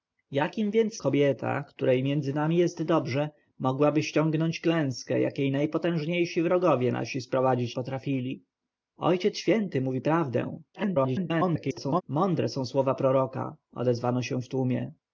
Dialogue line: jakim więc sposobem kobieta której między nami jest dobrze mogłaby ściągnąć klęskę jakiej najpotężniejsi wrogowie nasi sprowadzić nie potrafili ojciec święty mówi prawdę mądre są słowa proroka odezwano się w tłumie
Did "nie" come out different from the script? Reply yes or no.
yes